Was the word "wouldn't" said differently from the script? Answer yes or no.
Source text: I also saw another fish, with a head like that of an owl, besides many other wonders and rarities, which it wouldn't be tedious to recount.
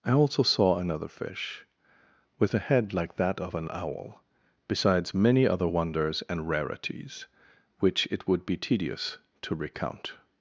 yes